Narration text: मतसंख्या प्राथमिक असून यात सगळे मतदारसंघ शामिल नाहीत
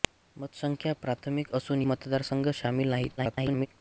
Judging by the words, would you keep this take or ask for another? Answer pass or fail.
fail